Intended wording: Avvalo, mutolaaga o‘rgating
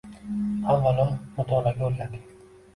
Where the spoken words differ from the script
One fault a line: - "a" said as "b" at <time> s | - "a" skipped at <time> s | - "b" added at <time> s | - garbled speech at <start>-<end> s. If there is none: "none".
none